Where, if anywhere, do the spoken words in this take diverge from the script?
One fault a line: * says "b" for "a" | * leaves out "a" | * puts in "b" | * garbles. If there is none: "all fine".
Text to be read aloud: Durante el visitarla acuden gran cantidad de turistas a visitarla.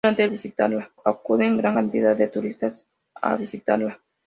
all fine